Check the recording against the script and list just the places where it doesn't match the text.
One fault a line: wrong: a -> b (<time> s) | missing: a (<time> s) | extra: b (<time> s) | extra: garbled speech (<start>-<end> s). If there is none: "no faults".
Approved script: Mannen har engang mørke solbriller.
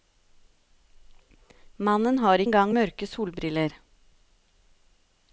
no faults